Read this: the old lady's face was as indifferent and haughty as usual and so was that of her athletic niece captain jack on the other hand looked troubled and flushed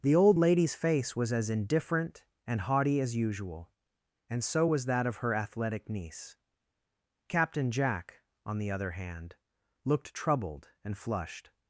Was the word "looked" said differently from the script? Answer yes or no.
no